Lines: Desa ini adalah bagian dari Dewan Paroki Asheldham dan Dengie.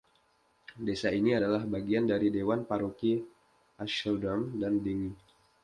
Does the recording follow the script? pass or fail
pass